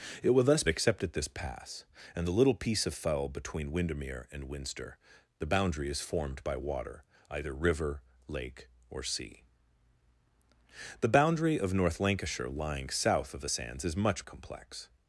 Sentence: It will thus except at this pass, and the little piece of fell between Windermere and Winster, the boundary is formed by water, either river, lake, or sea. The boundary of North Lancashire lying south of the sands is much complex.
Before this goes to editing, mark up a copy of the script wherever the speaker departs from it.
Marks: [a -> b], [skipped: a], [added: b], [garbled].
It will thus except at this pass, and the little piece of fell between Windermere and Winster, the boundary is formed by water, either river, lake, or sea. The boundary of North Lancashire lying south of the sands is much complex.